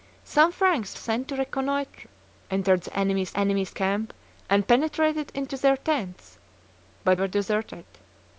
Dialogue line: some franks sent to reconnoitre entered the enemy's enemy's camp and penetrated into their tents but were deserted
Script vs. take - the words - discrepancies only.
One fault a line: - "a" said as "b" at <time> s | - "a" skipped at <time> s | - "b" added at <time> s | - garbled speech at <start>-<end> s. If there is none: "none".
none